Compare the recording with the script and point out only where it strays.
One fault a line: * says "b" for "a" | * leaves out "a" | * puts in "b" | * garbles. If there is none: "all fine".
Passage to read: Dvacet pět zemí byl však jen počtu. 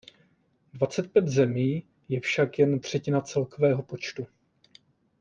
* says "je" for "byl"
* puts in "třetina celkového"